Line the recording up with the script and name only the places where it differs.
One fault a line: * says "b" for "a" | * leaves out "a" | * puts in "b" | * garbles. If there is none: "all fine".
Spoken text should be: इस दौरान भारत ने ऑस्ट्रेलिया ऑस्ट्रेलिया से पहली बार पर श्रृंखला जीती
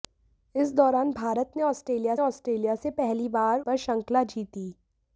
all fine